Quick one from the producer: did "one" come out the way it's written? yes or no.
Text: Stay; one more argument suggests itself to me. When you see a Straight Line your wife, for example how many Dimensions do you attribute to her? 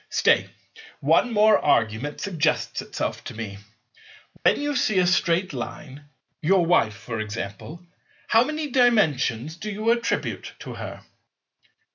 yes